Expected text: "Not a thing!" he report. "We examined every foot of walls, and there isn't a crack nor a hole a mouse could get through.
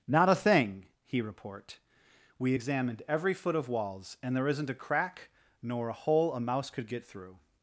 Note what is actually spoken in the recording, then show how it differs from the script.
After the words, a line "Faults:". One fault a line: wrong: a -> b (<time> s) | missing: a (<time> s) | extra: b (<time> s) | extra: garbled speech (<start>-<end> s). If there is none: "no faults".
"Not a thing!" he report. "We examined every foot of walls, and there isn't a crack nor a hole a mouse could get through.
Faults:
no faults